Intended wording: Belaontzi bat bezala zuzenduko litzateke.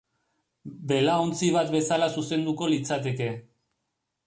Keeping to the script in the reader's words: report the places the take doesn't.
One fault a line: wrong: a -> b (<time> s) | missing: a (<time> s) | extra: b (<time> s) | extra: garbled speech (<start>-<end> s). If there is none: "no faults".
no faults